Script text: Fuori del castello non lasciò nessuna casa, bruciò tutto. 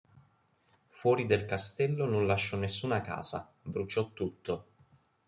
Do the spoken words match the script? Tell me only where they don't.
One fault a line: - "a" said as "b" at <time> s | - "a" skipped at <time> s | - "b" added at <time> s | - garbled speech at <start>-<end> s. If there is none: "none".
none